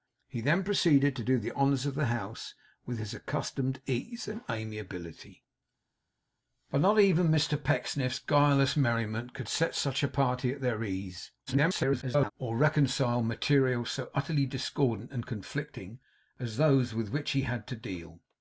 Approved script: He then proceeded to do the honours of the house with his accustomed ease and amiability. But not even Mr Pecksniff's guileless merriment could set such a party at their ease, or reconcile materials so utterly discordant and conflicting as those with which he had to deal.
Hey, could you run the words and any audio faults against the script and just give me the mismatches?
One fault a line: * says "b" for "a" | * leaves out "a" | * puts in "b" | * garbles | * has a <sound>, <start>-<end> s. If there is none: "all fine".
* garbles